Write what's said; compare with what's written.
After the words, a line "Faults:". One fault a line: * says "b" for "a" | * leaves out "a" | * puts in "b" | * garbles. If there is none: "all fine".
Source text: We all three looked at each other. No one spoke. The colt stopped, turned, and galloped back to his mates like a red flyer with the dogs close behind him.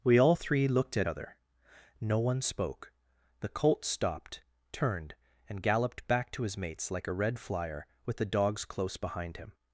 We all three looked at other. No one spoke. The colt stopped, turned, and galloped back to his mates like a red flyer with the dogs close behind him.
Faults:
* leaves out "each"